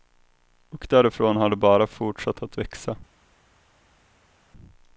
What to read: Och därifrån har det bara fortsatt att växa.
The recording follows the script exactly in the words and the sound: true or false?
true